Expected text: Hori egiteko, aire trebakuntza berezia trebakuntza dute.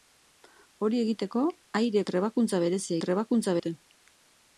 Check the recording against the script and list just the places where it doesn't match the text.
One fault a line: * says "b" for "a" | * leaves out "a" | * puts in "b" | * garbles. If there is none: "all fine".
all fine